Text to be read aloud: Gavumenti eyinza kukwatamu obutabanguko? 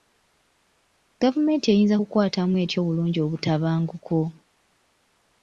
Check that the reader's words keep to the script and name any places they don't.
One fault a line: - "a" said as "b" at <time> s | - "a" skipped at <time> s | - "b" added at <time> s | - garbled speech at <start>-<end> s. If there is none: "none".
- "etya obulungi" added at 2.6 s